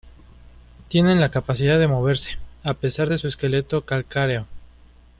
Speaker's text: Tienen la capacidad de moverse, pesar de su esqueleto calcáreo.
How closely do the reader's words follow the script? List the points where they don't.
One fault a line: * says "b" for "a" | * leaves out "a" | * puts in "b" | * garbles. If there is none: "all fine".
* puts in "a"